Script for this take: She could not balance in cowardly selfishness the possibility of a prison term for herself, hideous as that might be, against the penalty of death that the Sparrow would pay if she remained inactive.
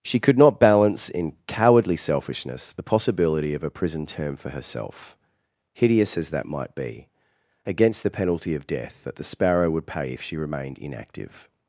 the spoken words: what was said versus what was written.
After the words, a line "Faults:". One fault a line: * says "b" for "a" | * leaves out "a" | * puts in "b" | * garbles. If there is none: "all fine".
She could not balance in cowardly selfishness the possibility of a prison term for herself, hideous as that might be, against the penalty of death that the Sparrow would pay if she remained inactive.
Faults:
all fine